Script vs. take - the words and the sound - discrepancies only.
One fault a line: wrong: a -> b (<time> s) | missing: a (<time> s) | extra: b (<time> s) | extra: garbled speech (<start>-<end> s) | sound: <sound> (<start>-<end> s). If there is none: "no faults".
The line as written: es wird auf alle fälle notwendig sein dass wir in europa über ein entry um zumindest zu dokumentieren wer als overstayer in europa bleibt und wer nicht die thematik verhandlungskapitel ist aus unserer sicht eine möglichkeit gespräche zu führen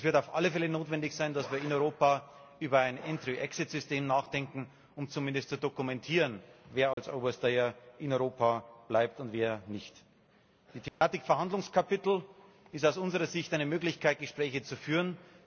extra: exit system nachdenken (3.4 s)
sound: dropout (6.9-7.0 s)
sound: dropout (10.9-11.0 s)